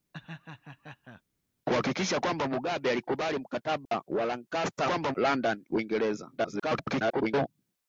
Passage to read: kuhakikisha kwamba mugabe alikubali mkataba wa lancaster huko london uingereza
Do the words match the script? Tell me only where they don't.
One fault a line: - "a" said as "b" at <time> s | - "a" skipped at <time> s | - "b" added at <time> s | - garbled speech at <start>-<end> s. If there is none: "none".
- "huko" said as "kwamba" at 4.8 s
- garbled speech at 6.4-7.5 s